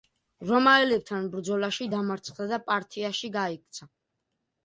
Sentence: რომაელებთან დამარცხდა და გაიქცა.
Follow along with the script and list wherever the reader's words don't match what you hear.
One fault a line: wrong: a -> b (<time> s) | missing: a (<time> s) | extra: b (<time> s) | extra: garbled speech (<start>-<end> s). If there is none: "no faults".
extra: ბრძოლაში (1.4 s)
extra: პართიაში (2.7 s)